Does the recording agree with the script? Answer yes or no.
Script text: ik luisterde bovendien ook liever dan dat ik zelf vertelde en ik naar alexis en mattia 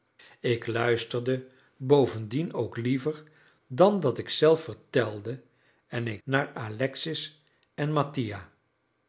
yes